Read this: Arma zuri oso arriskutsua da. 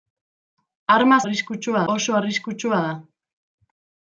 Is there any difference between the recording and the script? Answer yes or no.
yes